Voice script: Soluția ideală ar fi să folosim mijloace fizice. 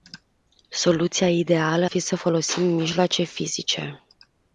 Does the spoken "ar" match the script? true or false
false